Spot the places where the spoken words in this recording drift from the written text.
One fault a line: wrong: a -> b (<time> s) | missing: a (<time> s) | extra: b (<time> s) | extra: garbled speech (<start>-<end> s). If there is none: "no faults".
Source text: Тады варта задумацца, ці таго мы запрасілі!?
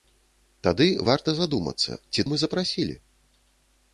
missing: таго (2.3 s)